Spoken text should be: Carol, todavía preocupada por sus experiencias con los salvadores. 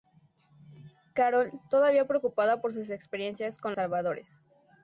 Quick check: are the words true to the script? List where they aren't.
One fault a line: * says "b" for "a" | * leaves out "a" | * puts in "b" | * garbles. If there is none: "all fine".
* leaves out "los"